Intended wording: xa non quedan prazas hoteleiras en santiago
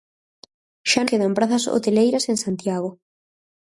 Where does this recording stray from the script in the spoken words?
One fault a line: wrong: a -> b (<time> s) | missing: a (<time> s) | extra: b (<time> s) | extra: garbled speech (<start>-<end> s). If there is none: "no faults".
missing: non (1.0 s)